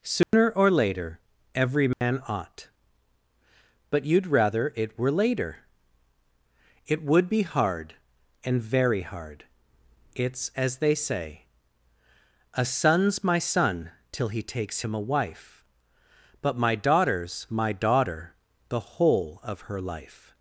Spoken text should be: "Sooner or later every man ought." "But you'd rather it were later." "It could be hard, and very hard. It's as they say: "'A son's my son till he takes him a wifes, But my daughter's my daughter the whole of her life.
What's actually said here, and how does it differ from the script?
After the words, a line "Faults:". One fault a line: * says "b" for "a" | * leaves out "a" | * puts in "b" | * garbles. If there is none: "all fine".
"Sooner or later every man ought." "But you'd rather it were later." "It would be hard, and very hard. It's as they say: "'A son's my son till he takes him a wife, But my daughter's my daughter the whole of her life.
Faults:
* says "would" for "could"
* says "wife" for "wifes"